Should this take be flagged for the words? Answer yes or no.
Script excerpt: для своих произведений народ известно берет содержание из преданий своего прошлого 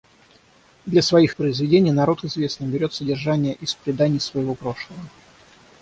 no